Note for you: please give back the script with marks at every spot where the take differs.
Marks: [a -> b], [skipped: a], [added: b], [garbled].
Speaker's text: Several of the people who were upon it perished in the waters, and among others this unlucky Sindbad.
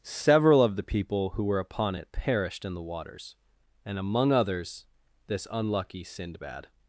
Several of the people who were upon it perished in the waters, and among others this unlucky Sindbad.